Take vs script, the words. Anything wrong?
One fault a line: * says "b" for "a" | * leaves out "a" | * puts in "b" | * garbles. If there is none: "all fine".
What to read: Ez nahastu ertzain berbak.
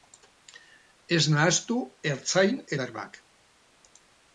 all fine